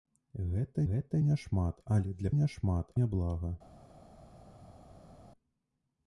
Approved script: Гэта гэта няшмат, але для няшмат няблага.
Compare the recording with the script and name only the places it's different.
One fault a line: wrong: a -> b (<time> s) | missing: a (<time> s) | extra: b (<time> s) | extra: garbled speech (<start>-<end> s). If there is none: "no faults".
no faults